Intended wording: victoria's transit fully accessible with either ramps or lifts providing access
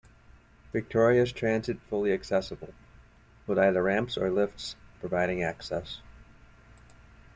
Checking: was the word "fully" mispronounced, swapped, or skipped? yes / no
no